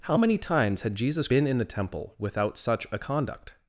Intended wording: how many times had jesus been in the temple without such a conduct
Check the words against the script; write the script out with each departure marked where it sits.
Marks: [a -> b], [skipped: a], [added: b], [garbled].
how many times had jesus been in the temple without such a conduct